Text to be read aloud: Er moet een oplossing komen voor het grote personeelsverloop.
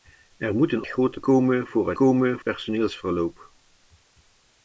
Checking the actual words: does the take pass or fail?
fail